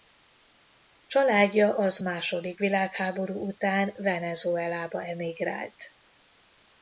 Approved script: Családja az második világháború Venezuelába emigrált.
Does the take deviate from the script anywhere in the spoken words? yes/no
yes